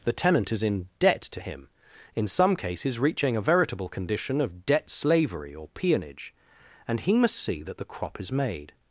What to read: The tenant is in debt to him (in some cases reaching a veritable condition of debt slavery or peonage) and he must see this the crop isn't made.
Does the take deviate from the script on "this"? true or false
true